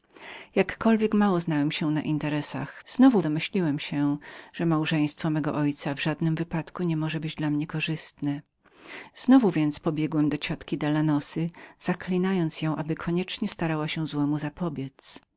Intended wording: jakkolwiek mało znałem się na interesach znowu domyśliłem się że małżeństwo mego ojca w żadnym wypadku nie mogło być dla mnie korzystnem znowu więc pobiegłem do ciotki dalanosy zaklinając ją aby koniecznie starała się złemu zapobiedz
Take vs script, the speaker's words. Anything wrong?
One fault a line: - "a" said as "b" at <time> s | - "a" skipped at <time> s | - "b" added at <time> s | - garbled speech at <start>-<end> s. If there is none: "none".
none